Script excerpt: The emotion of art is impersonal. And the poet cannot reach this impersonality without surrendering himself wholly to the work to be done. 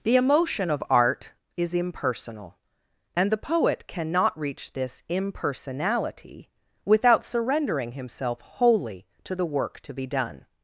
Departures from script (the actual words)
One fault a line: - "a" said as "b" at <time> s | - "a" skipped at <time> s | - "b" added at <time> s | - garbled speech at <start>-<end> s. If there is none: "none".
none